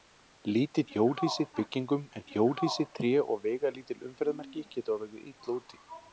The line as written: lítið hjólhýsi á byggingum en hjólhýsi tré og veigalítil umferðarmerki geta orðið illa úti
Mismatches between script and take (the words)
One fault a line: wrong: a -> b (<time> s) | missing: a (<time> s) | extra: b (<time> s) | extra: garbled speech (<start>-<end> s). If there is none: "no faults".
no faults